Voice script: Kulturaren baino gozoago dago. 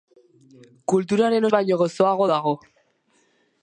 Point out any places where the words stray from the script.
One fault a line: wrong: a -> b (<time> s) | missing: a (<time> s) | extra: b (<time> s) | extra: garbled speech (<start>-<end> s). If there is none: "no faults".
no faults